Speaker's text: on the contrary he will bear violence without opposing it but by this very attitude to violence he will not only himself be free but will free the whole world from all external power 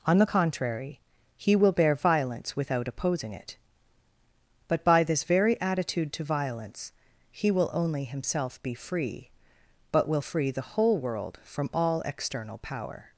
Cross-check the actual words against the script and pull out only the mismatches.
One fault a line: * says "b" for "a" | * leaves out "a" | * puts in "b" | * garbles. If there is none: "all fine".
* leaves out "not"